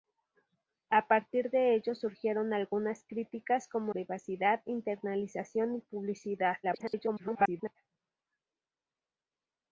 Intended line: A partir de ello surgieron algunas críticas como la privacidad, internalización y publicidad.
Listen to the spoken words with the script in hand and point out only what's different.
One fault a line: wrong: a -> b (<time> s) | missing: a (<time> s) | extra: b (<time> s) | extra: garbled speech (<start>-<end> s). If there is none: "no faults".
missing: la (4.0 s)
extra: garbled speech (6.6-7.8 s)